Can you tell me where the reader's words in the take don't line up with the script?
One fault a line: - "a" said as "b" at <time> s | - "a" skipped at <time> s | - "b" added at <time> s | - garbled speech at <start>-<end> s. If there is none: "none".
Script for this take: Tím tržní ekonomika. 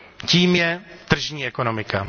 - "je" added at 0.5 s